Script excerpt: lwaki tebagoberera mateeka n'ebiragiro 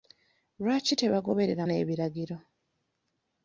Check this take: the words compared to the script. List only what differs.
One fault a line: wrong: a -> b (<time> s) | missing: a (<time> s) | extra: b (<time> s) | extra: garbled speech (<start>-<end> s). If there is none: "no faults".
missing: mateeka (1.6 s)